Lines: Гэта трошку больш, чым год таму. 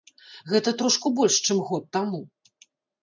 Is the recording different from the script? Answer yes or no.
no